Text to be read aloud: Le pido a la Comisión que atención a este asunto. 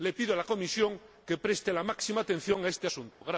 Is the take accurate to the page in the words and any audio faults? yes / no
no